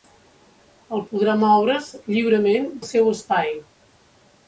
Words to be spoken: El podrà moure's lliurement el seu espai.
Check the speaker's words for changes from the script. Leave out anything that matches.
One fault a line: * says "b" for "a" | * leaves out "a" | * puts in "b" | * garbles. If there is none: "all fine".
all fine